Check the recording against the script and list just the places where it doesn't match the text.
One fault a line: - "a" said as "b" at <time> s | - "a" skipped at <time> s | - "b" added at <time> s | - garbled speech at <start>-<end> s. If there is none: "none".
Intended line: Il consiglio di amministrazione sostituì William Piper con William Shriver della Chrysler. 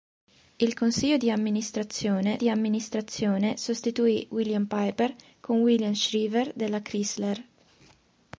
- "di amministrazione" added at 2.4 s